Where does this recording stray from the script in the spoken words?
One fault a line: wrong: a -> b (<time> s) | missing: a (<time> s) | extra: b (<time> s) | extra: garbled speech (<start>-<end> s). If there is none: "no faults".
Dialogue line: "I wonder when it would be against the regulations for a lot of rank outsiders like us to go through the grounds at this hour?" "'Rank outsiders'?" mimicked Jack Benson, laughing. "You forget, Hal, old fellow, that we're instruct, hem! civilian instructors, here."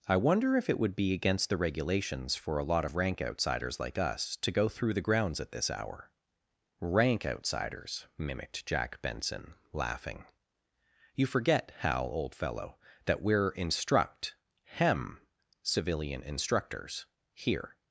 wrong: when -> if (0.6 s)